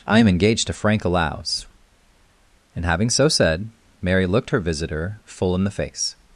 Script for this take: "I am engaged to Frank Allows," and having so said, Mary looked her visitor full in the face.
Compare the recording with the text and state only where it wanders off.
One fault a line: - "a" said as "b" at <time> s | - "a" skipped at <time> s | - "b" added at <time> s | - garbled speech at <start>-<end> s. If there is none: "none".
none